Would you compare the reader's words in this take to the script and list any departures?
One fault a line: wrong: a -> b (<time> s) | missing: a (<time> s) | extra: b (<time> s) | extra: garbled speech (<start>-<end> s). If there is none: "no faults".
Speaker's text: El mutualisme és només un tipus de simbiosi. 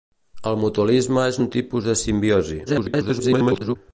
missing: només (1.4 s)
extra: garbled speech (2.7-3.8 s)